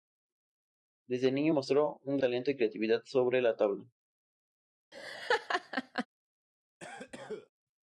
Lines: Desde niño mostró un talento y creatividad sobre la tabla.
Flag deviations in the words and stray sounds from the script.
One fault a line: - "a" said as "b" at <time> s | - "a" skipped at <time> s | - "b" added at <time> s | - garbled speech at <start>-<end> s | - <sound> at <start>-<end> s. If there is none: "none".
- laugh at 4.9-6.1 s
- cough at 6.8-7.5 s